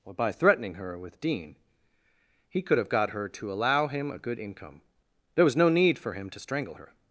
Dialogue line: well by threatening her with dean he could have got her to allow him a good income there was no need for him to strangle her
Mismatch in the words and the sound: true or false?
true